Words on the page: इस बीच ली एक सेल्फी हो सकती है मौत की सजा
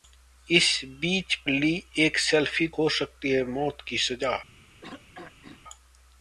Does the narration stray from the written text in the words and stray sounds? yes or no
yes